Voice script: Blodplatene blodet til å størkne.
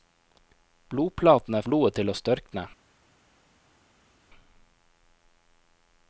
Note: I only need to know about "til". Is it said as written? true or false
true